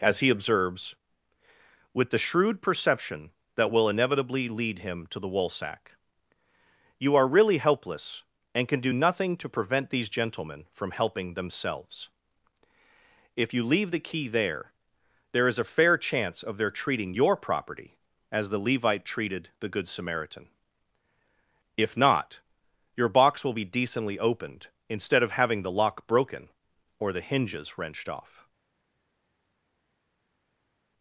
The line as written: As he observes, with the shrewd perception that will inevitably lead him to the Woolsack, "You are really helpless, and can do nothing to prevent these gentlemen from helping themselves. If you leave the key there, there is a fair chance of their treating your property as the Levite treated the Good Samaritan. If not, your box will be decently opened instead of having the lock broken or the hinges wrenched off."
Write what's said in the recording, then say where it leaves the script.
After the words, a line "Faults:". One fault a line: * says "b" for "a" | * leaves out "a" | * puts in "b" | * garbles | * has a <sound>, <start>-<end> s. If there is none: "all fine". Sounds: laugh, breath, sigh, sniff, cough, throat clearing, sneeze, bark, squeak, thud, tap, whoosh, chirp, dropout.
As he observes, with the shrewd perception that will inevitably lead him to the Woolsack, "You are really helpless, and can do nothing to prevent these gentlemen from helping themselves. If you leave the key there, there is a fair chance of their treating your property as the Levite treated the Good Samaritan. If not, your box will be decently opened instead of having the lock broken or the hinges wrenched off."
Faults:
all fine